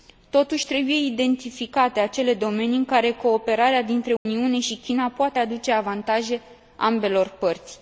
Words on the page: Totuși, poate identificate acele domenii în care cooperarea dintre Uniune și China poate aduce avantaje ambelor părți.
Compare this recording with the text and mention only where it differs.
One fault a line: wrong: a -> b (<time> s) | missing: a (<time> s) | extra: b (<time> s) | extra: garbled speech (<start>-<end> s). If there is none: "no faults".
wrong: poate -> trebuie (0.7 s)